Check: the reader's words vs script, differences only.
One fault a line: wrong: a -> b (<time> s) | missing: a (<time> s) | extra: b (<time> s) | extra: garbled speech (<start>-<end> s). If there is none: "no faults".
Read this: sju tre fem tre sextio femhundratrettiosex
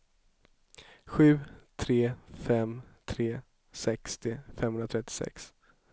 no faults